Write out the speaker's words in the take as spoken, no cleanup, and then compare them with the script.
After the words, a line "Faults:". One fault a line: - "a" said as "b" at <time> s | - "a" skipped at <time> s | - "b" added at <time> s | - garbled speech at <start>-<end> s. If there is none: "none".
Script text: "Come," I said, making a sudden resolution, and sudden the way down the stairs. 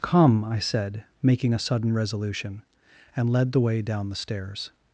"Come," I said, making a sudden resolution, and led the way down the stairs.
Faults:
- "sudden" said as "led" at 3.3 s